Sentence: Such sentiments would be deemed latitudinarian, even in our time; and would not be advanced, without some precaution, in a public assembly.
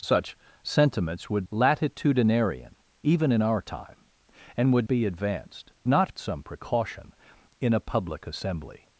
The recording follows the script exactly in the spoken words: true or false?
false